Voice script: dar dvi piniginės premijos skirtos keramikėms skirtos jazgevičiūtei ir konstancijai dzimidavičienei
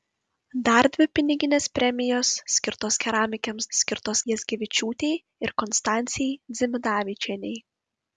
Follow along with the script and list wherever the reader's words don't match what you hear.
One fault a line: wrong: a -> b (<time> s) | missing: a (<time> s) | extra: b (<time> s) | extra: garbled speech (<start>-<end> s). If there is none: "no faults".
no faults